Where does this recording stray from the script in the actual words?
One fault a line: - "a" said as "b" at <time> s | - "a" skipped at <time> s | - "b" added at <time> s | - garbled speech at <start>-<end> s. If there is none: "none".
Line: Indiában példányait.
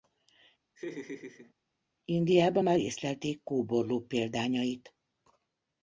- "már észlelték kóborló" added at 2.6 s